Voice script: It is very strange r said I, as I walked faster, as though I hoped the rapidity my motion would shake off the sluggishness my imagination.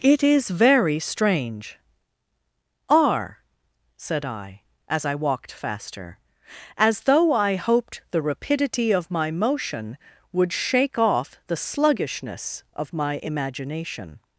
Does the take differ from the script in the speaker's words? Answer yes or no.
yes